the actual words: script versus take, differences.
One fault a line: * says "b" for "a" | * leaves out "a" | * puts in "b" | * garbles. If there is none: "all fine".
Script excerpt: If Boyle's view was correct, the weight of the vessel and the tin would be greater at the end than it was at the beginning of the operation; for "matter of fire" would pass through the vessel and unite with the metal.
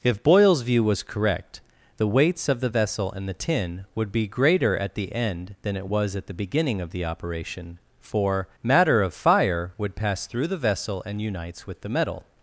* says "weights" for "weight"
* says "unites" for "unite"